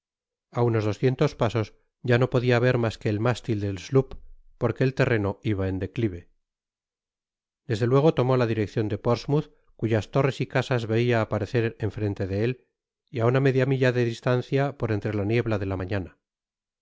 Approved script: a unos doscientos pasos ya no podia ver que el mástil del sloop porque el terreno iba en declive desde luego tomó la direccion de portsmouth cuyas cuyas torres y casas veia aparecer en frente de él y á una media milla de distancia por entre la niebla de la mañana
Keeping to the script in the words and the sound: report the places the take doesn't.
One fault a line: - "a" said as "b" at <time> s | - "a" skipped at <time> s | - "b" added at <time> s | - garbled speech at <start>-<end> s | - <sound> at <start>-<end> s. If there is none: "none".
- "mas" added at 2.8 s
- "cuyas" skipped at 10.1 s